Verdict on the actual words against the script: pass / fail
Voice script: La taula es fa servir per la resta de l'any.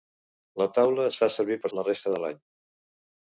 pass